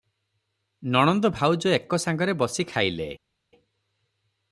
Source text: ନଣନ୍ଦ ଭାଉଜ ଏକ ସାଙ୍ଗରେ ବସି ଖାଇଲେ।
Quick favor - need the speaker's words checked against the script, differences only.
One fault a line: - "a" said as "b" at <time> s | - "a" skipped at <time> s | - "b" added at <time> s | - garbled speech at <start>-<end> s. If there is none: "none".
none